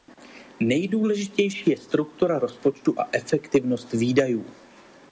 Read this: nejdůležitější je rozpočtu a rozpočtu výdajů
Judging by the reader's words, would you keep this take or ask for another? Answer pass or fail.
fail